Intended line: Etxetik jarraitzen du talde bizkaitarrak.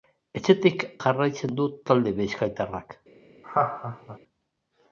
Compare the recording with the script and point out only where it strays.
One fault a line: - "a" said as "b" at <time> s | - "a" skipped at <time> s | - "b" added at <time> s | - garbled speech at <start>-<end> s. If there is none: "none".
none